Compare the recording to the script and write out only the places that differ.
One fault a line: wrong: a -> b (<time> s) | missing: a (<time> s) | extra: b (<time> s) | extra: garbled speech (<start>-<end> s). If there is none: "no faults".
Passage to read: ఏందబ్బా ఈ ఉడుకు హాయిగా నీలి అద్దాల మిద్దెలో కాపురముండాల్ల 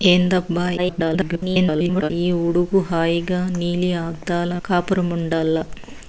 extra: garbled speech (0.8-2.1 s)
missing: మిద్దెలో (4.5 s)